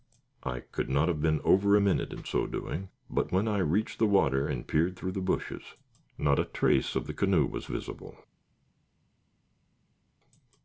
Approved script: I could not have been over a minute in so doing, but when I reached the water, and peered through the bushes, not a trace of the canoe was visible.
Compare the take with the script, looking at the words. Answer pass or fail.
pass